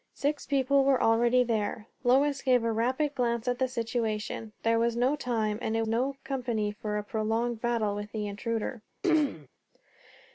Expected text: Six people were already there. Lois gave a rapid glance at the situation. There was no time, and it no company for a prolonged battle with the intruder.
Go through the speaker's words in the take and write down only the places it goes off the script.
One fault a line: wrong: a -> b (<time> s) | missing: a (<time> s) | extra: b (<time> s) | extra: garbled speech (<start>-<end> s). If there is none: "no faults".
no faults